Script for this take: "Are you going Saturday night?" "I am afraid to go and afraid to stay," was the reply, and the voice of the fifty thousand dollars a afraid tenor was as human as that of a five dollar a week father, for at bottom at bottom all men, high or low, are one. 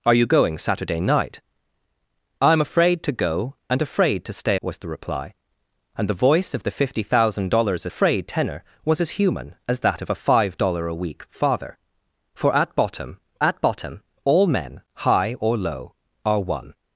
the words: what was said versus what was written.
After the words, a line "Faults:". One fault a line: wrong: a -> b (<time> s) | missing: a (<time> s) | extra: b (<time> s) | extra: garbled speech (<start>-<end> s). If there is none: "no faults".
"Are you going Saturday night?" "I am afraid to go and afraid to stay," was the reply, and the voice of the fifty thousand dollars a afraid tenor was as human as that of a five dollar a week father, for at bottom at bottom all men, high or low, are one.
Faults:
no faults